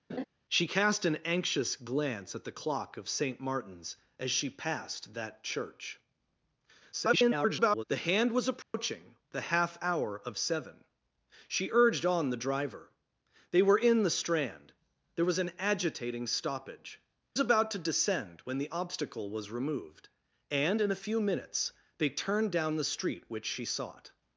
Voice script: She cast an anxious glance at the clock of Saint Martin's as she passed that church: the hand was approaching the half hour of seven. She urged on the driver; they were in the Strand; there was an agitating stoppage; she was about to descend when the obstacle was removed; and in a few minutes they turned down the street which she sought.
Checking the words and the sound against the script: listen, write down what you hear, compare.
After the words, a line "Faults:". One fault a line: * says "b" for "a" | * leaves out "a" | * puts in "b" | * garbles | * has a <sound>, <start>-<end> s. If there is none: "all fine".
She cast an anxious glance at the clock of Saint Martin's as she passed that church: [garbled] the hand was approaching the half hour of seven. She urged on the driver; they were in the Strand; there was an agitating stoppage; about to descend when the obstacle was removed; and in a few minutes they turned down the street which she sought.
Faults:
* has a laugh, 0.1-0.2 s
* garbles
* has a dropout, 8.6-8.7 s
* leaves out "she was"